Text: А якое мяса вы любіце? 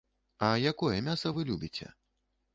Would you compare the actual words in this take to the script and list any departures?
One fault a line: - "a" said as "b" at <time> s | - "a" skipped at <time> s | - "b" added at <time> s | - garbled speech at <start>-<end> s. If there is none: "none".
none